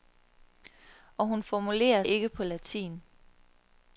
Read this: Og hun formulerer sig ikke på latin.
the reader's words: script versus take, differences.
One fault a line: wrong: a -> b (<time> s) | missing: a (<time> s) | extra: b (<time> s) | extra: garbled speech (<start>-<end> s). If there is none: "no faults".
missing: sig (2.0 s)